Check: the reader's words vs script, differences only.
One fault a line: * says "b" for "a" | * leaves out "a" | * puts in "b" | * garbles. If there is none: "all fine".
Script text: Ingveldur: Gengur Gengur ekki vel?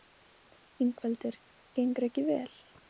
* leaves out "Gengur"